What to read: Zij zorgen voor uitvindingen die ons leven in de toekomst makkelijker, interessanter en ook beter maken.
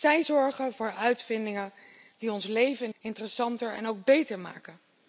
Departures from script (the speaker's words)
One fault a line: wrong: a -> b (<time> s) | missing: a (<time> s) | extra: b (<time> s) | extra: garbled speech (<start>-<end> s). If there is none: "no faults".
missing: de toekomst makkelijker (2.9 s)